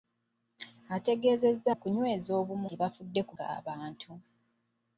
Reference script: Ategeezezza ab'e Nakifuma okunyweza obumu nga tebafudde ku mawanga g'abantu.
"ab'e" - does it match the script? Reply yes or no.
no